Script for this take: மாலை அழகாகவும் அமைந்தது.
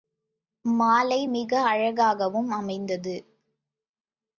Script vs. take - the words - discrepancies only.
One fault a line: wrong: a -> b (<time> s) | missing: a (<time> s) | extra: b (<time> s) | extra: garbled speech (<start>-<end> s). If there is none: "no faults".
extra: மிக (1.2 s)